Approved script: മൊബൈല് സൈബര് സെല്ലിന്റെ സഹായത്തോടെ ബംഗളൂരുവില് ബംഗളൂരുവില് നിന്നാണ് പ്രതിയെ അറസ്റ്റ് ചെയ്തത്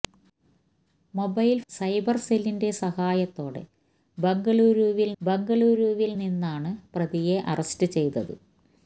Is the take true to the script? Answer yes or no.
yes